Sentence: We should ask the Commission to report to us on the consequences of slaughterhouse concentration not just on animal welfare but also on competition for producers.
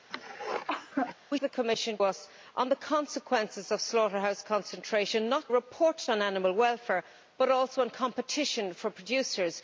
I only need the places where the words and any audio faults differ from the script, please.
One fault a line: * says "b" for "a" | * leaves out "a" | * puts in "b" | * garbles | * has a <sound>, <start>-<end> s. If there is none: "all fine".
* has a cough, 0.1-1.2 s
* leaves out "should ask"
* leaves out "to report to"
* says "report" for "just"